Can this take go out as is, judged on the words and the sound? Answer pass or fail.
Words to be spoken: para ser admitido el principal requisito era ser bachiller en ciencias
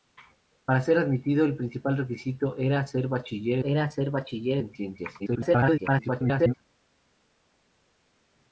fail